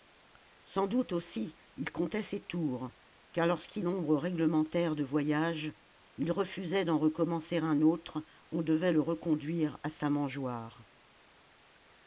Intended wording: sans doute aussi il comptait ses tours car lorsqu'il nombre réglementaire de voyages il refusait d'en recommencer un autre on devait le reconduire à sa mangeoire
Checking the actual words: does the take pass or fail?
pass